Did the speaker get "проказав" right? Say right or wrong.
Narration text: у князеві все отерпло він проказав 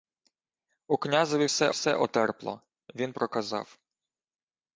right